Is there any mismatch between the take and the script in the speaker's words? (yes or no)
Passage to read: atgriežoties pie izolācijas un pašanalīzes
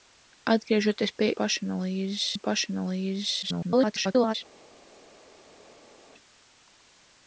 yes